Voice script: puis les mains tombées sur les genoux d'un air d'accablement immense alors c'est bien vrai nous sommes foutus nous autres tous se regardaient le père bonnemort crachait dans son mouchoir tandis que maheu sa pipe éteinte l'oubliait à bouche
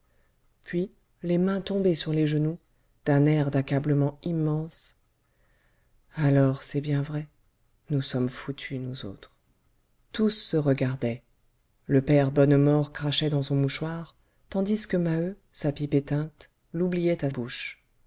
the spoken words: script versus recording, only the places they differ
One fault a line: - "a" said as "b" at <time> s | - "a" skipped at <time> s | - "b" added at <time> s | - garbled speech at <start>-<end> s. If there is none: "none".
none